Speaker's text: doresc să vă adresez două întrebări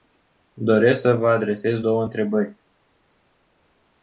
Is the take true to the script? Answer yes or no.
yes